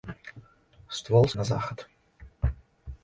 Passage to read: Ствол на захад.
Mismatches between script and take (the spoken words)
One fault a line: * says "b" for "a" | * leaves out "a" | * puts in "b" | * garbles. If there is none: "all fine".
all fine